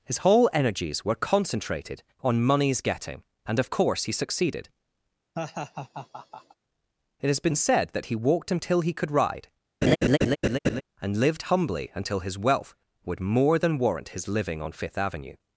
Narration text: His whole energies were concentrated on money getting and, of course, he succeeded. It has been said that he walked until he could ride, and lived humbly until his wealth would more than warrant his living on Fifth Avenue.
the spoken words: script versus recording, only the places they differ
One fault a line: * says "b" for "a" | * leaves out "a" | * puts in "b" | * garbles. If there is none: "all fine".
* says "moneys" for "money"